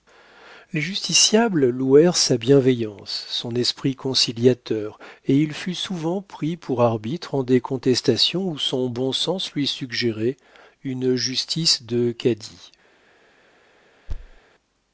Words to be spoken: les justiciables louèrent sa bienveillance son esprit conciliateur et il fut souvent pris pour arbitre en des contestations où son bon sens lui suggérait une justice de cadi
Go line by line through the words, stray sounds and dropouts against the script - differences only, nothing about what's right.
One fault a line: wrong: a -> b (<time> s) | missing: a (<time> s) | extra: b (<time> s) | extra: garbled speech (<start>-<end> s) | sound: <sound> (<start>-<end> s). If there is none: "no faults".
sound: thud (14.1-14.4 s)